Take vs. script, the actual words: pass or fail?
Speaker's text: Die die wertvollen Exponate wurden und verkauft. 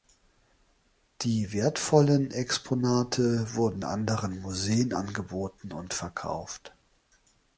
fail